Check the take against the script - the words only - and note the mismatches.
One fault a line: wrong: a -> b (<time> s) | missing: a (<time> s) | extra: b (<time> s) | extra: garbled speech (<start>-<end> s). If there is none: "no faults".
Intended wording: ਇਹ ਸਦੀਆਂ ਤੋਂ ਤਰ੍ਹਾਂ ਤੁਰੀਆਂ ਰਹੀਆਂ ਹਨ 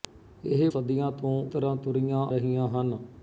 no faults